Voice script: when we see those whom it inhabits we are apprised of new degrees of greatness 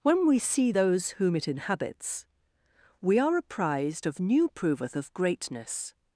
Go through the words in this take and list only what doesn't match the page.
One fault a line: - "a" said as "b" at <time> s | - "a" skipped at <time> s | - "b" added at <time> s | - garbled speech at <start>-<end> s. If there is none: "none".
- "degrees" said as "proveth" at 4.5 s